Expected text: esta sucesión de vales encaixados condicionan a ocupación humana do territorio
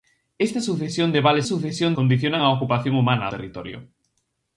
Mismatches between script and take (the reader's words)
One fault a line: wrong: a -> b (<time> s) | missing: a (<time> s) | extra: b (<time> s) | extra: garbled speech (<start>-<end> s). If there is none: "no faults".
wrong: encaixados -> sucesión (1.4 s)
missing: do (3.3 s)